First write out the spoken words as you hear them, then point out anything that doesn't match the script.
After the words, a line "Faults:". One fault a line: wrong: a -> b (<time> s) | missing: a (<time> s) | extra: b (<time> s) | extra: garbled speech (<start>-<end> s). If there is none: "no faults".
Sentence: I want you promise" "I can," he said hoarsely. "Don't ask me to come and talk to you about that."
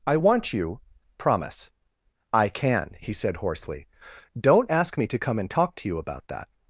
I want you promise" "I can," he said hoarsely. "Don't ask me to come and talk to you about that."
Faults:
no faults